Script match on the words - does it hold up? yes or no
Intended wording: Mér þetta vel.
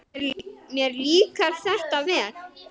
no